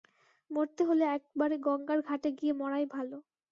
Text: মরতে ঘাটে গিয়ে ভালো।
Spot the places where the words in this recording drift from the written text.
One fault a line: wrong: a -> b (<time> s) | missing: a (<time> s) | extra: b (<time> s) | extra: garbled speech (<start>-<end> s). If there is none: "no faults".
extra: হলে একবারে গঙ্গার (0.9 s)
extra: মরাই (2.5 s)